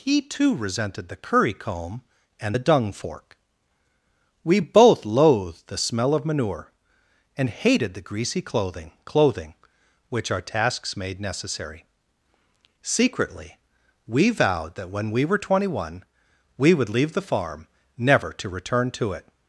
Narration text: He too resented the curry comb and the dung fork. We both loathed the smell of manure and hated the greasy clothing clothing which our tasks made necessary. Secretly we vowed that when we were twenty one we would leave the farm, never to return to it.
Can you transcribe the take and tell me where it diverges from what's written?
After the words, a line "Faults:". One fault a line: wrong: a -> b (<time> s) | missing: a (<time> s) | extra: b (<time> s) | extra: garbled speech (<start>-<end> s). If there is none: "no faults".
He too resented the curry comb and the dung fork. We both loathed the smell of manure and hated the greasy clothing clothing which our tasks made necessary. Secretly we vowed that when we were twenty one we would leave the farm, never to return to it.
Faults:
no faults